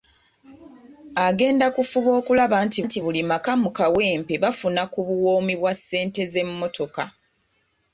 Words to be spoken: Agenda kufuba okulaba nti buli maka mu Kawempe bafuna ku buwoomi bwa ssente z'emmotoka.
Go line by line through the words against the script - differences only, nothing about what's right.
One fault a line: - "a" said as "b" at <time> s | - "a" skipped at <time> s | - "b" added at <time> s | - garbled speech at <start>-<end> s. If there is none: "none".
- "nti" added at 2.8 s